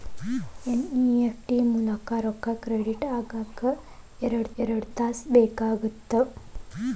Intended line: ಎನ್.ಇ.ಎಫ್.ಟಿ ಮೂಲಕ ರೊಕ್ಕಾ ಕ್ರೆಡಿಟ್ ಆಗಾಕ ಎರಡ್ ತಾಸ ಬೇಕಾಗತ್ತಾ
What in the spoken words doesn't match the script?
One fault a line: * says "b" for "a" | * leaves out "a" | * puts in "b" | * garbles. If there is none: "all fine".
* puts in "ಎರಡ್"